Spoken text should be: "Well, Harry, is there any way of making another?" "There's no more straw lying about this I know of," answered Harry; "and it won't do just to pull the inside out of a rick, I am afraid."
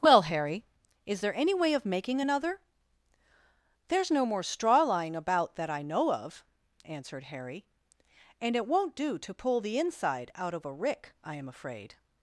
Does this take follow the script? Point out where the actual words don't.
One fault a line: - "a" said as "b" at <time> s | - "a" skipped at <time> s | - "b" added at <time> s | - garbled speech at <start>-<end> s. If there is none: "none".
- "this" said as "that" at 5.6 s
- "just" skipped at 9.2 s